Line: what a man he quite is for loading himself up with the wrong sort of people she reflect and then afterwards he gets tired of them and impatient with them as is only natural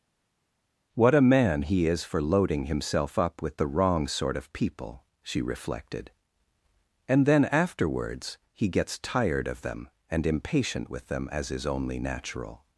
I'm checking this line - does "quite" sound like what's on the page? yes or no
no